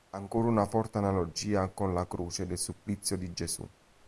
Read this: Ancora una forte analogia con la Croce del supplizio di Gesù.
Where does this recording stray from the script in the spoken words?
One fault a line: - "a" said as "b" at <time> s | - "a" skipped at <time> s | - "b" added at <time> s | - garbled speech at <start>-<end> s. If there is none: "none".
none